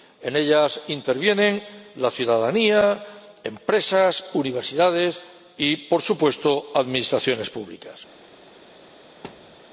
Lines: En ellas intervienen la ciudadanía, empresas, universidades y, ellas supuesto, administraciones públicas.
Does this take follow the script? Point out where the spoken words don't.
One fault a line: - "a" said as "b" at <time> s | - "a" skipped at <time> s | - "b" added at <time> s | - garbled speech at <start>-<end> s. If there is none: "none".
- "ellas" said as "por" at 5.9 s